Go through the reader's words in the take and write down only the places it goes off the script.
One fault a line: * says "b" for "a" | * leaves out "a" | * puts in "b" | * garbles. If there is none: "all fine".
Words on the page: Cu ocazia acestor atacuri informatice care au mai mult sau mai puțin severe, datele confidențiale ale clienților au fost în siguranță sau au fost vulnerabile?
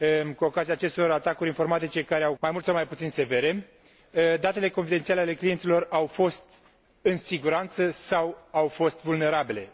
all fine